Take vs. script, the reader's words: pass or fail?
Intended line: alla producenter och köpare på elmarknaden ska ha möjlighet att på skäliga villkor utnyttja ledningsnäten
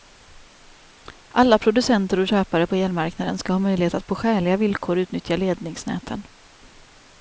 pass